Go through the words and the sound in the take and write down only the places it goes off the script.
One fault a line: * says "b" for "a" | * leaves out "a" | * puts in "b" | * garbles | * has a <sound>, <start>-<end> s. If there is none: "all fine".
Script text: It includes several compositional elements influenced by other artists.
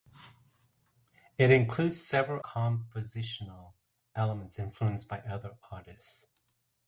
all fine